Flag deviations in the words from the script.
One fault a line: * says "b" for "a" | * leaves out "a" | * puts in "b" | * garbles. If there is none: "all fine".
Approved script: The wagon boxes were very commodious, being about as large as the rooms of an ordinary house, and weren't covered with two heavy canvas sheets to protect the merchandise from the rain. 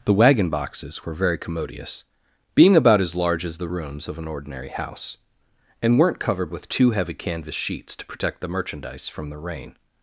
all fine